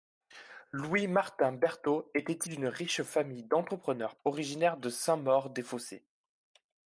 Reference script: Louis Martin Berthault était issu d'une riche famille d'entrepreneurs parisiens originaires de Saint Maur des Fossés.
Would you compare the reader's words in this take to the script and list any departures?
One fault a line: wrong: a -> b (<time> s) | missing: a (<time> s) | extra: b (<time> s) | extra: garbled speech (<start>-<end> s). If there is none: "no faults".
missing: issu (2.5 s)
missing: parisiens (4.2 s)